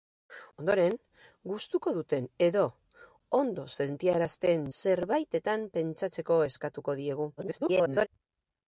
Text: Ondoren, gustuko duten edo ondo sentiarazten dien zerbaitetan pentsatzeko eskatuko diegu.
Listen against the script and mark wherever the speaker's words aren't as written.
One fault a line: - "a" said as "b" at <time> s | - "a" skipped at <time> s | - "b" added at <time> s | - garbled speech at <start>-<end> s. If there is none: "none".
- "dien" skipped at 4.7 s
- garbled speech at 7.4-8.1 s